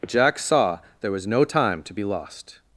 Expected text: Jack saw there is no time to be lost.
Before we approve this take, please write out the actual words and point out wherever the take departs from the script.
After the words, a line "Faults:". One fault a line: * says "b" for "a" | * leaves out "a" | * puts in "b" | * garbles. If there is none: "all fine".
Jack saw there was no time to be lost.
Faults:
* says "was" for "is"